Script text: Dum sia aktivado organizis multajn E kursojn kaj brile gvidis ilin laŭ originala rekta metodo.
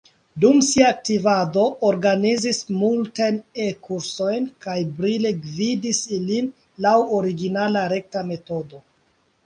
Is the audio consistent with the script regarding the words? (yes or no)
yes